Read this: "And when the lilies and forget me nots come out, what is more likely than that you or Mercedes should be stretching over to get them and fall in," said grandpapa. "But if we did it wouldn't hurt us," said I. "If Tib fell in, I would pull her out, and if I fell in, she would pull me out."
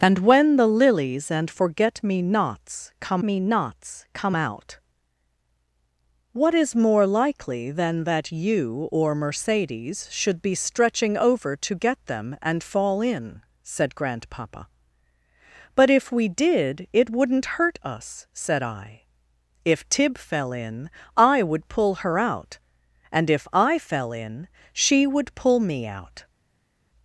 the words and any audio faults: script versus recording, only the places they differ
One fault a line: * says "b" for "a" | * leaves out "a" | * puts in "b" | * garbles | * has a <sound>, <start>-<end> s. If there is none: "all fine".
* puts in "me nots come"